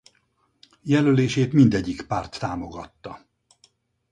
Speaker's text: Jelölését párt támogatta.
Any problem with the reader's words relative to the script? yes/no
yes